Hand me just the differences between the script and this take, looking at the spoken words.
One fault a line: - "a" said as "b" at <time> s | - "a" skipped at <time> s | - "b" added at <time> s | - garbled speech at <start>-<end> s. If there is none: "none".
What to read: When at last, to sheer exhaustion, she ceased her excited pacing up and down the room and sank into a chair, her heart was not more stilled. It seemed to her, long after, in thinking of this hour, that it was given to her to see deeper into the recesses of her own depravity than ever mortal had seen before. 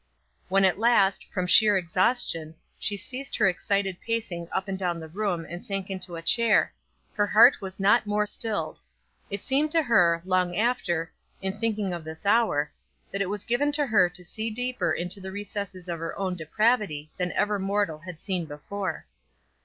- "to" said as "from" at 1.3 s